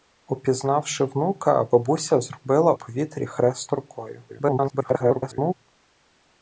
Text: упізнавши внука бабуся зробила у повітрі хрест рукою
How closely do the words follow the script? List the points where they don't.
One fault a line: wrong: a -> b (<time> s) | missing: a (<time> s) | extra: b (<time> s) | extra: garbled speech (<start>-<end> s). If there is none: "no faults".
missing: у (2.7 s)
extra: garbled speech (4.3-5.5 s)